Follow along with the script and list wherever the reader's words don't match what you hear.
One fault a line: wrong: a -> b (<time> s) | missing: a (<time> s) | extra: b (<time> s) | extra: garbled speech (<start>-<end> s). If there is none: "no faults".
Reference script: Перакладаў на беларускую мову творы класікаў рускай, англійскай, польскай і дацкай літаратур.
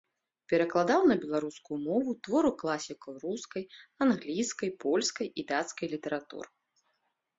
no faults